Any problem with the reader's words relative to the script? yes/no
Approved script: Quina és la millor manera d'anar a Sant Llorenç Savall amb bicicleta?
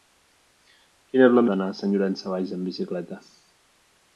yes